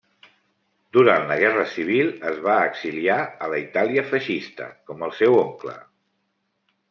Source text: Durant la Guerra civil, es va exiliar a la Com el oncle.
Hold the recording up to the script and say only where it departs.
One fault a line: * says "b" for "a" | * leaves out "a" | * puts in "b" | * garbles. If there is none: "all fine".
* puts in "Itàlia feixista"
* puts in "seu"